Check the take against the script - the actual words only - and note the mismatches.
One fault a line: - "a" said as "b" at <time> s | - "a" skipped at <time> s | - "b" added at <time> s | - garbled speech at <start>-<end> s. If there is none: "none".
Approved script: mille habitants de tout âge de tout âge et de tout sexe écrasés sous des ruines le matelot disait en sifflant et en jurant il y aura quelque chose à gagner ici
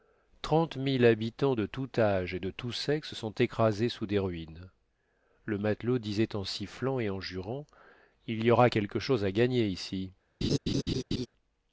- "de tout âge" skipped at 2.3 s
- "sont" added at 3.1 s